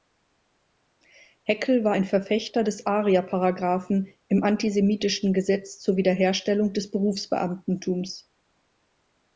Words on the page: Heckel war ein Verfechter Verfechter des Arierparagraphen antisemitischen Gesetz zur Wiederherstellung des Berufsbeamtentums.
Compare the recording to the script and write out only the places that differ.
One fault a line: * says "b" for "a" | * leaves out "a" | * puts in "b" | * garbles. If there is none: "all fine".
* leaves out "Verfechter"
* puts in "im"